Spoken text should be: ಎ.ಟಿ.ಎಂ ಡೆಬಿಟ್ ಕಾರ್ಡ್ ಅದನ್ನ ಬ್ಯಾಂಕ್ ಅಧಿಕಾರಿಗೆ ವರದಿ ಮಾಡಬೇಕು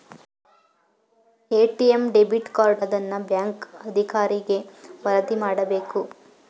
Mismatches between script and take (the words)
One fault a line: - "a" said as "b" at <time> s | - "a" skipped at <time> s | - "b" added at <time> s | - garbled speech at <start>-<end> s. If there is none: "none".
none